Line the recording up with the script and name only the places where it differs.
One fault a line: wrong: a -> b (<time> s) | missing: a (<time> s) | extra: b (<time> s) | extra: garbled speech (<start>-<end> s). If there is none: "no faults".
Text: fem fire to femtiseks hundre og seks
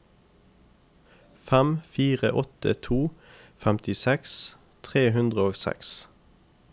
extra: åtte (2.3 s)
extra: tre (4.8 s)